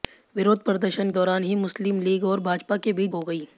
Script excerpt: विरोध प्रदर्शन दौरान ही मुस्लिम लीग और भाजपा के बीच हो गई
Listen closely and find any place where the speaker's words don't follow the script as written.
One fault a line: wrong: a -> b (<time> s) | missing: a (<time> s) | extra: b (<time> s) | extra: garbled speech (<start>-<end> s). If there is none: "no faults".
no faults